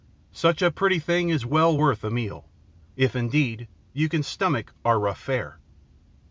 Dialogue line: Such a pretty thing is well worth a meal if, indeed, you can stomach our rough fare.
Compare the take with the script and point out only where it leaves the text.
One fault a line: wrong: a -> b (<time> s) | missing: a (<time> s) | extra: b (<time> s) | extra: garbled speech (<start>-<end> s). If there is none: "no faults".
no faults